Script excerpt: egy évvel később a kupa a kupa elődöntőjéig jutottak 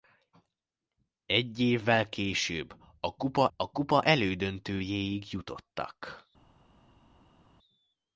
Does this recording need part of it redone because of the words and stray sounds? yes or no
no